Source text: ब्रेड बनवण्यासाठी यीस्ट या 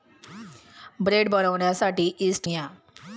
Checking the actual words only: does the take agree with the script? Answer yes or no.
yes